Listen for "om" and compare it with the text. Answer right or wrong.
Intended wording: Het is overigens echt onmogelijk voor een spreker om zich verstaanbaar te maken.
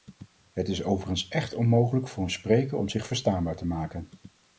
right